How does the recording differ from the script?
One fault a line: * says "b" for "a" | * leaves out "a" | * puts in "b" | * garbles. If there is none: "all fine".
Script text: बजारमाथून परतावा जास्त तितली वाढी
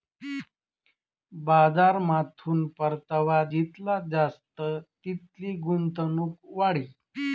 * puts in "जितला"
* puts in "गुंतवणूक"